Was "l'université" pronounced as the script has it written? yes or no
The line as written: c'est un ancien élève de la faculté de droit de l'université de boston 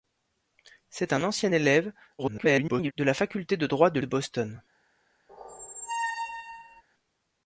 no